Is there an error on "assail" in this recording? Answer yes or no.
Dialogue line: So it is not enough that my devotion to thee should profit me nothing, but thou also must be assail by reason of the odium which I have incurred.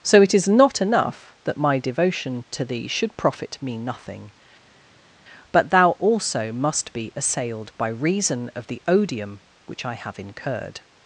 yes